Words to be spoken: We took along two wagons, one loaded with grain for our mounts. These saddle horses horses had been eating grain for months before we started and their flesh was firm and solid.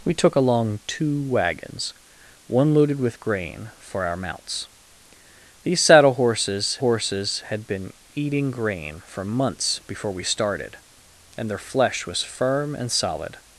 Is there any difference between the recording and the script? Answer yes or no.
no